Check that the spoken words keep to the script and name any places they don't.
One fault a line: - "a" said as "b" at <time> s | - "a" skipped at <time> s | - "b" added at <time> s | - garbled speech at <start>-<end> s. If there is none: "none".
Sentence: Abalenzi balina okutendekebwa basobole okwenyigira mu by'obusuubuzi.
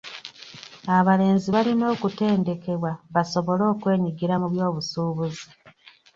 none